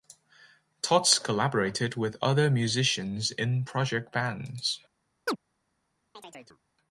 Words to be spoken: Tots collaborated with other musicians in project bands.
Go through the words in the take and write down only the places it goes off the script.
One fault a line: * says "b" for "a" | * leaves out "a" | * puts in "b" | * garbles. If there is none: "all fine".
all fine